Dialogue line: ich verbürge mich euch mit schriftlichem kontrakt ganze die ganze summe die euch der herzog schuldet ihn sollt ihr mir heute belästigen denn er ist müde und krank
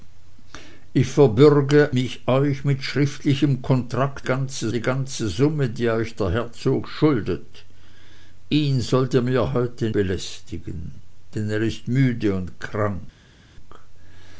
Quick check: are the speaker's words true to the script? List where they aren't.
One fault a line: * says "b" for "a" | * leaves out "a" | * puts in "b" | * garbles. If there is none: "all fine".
all fine